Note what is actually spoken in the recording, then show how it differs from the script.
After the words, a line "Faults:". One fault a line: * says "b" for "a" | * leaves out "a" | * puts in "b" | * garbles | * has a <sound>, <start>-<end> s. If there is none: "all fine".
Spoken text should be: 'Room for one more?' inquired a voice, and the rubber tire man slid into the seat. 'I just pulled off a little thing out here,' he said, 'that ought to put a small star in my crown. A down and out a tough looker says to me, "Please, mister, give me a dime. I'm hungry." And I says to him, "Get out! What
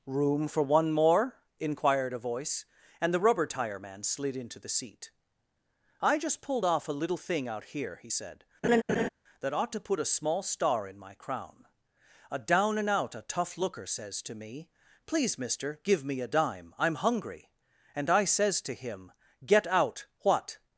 'Room for one more?' inquired a voice, and the rubber tire man slid into the seat. 'I just pulled off a little thing out here,' he said, 'that ought to put a small star in my crown. A down and out a tough looker says to me, "Please, mister, give me a dime. I'm hungry." And I says to him, "Get out! What
Faults:
* has a laugh, 8.6-9.1 s